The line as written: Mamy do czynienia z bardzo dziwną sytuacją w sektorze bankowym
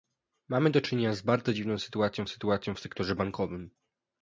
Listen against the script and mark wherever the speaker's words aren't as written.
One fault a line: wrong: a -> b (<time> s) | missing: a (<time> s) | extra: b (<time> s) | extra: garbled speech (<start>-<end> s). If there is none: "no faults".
extra: sytuacją (2.3 s)